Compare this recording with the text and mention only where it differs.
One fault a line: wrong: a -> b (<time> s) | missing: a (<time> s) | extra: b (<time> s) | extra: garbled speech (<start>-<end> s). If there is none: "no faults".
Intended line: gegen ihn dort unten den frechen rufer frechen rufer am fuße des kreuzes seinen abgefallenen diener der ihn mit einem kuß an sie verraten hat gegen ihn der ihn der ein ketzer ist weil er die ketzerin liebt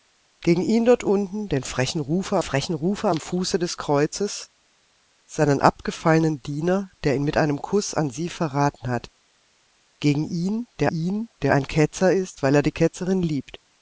no faults